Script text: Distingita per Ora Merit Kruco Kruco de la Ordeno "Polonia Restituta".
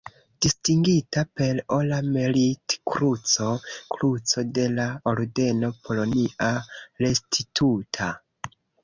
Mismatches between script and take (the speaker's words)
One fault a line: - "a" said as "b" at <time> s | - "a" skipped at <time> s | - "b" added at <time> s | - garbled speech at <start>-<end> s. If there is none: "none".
none